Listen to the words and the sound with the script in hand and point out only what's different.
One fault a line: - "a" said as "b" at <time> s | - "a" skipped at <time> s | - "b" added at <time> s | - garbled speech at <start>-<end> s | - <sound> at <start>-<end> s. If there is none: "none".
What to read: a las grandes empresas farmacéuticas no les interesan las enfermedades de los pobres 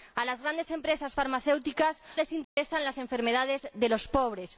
- "no" skipped at 2.0 s
- dropout at 2.4-2.6 s